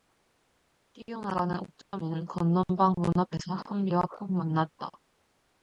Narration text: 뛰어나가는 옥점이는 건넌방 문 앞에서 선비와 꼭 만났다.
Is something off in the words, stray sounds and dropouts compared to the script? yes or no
yes